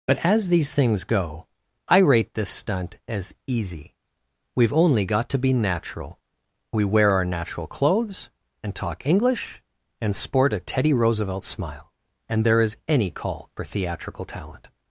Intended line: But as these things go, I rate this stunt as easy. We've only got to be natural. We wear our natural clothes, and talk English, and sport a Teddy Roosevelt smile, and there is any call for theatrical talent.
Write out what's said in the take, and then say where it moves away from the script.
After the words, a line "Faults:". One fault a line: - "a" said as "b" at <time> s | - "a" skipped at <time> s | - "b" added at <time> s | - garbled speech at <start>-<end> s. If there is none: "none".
But as these things go, I rate this stunt as easy. We've only got to be natural. We wear our natural clothes, and talk English, and sport a Teddy Roosevelt smile, and there is any call for theatrical talent.
Faults:
none